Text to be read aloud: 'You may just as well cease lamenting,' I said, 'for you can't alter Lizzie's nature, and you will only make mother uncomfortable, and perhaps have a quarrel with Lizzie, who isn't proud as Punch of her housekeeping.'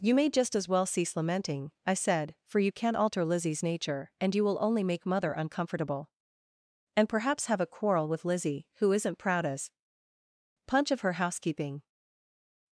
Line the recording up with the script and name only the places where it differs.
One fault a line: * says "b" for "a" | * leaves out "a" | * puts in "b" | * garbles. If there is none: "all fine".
all fine